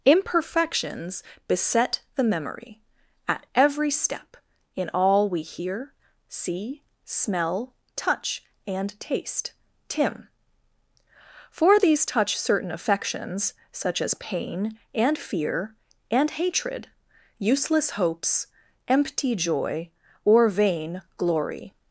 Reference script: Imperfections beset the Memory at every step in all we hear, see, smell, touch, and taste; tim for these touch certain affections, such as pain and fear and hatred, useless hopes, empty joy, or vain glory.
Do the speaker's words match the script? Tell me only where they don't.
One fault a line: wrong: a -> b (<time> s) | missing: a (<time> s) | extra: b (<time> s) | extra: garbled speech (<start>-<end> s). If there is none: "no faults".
no faults